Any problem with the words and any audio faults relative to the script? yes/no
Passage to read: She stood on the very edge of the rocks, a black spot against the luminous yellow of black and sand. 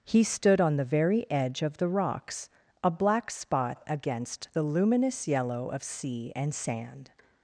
yes